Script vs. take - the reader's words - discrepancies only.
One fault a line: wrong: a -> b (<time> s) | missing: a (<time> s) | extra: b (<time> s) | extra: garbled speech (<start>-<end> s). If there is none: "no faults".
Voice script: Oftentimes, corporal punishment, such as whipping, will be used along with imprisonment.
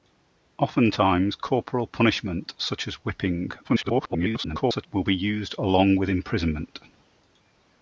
extra: garbled speech (3.6-4.9 s)